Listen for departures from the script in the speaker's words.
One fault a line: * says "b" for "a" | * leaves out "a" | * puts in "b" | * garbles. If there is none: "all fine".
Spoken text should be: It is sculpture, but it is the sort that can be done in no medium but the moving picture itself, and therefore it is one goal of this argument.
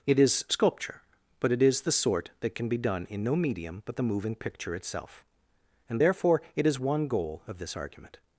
all fine